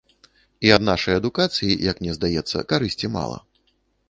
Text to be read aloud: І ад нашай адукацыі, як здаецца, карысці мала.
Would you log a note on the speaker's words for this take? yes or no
yes